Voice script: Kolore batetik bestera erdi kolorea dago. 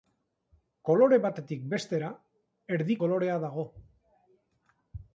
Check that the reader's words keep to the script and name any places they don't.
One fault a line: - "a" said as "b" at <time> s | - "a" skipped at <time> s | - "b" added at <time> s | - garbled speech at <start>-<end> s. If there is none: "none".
none